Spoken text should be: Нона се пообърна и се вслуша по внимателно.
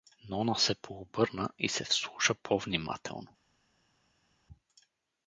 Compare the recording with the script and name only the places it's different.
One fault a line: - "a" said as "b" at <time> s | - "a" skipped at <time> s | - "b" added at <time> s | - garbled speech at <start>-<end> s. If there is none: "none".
none